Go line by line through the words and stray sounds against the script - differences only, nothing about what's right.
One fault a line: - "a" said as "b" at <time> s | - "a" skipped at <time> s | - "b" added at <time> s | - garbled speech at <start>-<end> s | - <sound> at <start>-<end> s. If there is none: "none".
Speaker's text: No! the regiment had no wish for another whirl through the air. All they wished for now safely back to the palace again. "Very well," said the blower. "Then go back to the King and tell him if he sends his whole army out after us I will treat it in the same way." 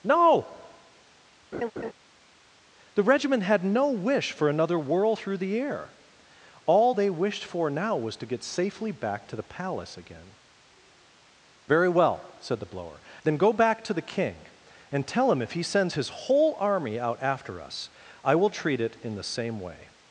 - laugh at 1.5-1.9 s
- "was to get" added at 8.0 s